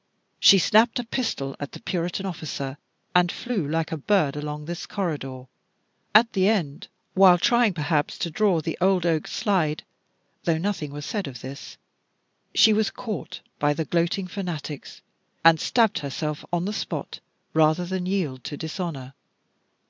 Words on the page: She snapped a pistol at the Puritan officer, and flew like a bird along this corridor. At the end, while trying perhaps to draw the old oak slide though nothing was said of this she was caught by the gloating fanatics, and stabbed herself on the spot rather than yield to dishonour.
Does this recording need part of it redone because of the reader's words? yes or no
no